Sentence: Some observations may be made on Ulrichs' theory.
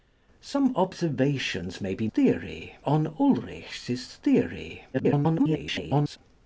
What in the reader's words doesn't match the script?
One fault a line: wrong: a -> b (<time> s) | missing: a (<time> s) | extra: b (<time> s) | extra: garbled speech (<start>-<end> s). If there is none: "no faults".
wrong: made -> theory (2.1 s)
extra: garbled speech (4.9-6.2 s)